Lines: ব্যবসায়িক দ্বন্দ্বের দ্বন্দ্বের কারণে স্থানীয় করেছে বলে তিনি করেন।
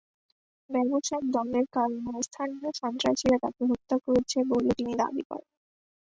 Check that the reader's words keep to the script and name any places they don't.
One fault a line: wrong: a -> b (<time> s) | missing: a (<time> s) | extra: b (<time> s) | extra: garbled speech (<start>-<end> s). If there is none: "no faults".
missing: দ্বন্দ্বের (1.7 s)
extra: সন্ত্রাসীরা তাঁকে হত্যা (2.8 s)
extra: দাবি (5.0 s)